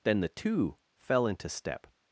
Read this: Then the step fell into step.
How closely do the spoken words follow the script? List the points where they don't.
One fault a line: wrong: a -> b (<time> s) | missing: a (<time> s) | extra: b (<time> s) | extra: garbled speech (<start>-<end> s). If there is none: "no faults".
wrong: step -> two (0.3 s)